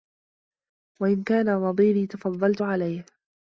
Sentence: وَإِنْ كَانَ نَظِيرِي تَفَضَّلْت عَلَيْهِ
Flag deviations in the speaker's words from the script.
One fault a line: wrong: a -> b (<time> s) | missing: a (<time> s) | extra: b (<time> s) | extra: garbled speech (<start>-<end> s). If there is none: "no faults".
no faults